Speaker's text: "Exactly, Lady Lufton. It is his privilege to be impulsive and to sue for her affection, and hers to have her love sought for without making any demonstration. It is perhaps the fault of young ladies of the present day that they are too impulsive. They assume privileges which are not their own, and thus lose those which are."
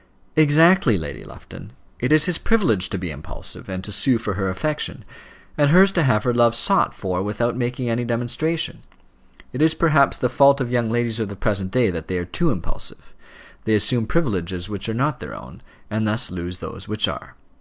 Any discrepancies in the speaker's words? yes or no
no